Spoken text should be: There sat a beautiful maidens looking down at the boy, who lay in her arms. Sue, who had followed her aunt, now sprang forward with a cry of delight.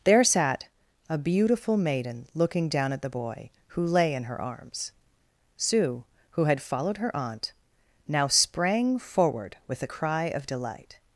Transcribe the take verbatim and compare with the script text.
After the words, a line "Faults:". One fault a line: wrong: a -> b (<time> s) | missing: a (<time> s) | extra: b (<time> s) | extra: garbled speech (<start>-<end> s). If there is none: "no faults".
There sat a beautiful maiden looking down at the boy, who lay in her arms. Sue, who had followed her aunt, now sprang forward with a cry of delight.
Faults:
wrong: maidens -> maiden (1.8 s)